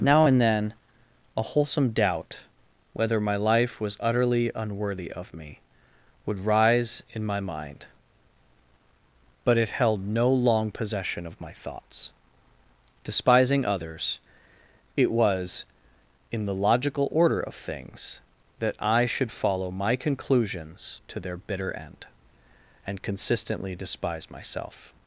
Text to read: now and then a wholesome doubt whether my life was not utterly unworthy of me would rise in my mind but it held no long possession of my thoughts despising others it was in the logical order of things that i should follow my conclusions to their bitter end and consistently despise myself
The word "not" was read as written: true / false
false